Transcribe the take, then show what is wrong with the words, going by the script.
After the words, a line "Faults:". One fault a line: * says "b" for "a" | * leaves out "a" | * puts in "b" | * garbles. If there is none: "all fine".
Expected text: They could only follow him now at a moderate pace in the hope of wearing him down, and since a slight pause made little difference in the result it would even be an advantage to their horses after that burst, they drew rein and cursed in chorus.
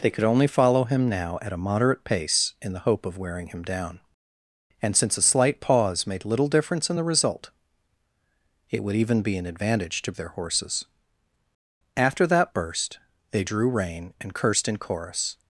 They could only follow him now at a moderate pace in the hope of wearing him down, and since a slight pause made little difference in the result it would even be an advantage to their horses after that burst, they drew rein and cursed in chorus.
Faults:
all fine